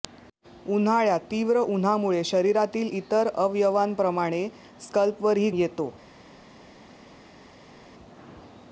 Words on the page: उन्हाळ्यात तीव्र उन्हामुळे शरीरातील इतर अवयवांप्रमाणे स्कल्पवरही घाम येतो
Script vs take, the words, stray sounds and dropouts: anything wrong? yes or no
yes